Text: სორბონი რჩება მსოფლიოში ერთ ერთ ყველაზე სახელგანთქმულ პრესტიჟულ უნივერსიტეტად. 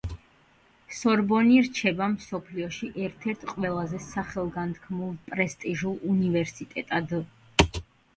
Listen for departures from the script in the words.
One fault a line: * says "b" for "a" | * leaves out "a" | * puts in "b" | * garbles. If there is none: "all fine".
all fine